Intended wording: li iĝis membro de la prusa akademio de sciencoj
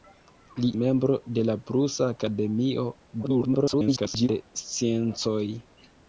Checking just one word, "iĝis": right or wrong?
wrong